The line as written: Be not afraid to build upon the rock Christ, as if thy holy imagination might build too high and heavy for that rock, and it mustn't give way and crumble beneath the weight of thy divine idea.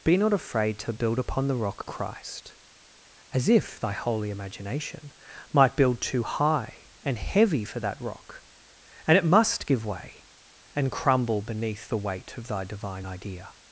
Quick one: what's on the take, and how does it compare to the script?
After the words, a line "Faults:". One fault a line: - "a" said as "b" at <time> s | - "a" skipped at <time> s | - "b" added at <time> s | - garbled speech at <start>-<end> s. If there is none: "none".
Be not afraid to build upon the rock Christ, as if thy holy imagination might build too high and heavy for that rock, and it must give way and crumble beneath the weight of thy divine idea.
Faults:
- "mustn't" said as "must" at 9.3 s